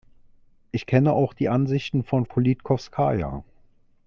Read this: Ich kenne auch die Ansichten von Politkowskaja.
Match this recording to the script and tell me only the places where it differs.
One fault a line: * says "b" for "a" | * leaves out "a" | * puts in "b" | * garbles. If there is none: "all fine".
all fine